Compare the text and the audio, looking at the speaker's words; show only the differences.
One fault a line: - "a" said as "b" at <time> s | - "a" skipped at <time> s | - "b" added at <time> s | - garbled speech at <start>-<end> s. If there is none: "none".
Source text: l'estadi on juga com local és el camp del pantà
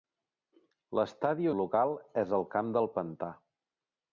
- "on juga com" skipped at 1.5 s